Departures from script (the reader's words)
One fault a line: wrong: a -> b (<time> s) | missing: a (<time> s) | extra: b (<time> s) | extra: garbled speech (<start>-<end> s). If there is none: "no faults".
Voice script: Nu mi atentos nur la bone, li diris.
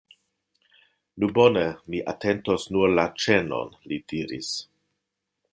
extra: bone (1.4 s)
wrong: bone -> ĉenon (3.3 s)